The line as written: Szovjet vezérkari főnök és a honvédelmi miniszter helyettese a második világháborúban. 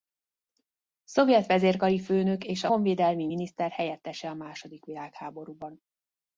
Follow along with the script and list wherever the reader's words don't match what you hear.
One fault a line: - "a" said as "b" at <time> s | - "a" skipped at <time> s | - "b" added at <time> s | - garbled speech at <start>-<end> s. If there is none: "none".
none